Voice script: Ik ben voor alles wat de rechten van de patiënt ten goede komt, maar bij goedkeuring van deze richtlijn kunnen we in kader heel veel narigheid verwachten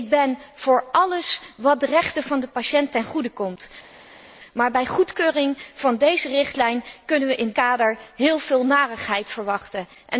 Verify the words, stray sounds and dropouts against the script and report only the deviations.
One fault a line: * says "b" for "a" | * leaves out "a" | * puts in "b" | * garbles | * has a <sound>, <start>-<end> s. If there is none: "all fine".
all fine